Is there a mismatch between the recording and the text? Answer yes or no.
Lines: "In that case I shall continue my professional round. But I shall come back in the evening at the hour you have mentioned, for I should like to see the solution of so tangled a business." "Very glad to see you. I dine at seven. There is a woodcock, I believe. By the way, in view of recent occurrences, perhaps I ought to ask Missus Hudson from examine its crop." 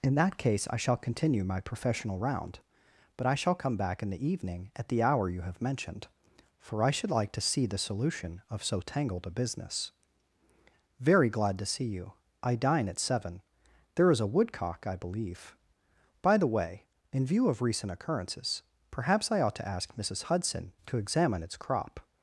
yes